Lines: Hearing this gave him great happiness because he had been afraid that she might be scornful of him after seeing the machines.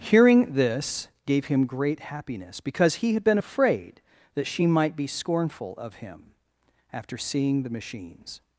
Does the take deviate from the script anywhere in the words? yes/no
no